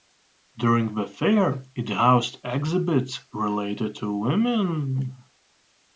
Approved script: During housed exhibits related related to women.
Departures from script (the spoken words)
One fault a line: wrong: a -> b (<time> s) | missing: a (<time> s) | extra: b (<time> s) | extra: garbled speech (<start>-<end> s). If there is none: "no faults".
extra: the fair it (0.9 s)
missing: related (3.9 s)